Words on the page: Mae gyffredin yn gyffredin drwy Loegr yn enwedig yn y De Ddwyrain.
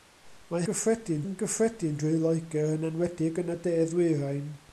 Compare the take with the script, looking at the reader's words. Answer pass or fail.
pass